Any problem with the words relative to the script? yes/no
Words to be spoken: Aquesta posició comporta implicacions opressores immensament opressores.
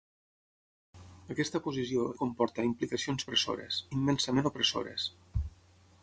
no